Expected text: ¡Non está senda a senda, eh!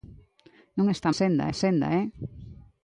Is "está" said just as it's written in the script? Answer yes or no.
yes